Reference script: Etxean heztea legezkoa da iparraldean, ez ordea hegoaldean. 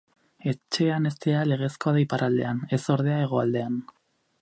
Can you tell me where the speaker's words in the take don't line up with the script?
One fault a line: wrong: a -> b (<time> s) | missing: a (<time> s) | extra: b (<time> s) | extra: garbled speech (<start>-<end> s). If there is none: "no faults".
no faults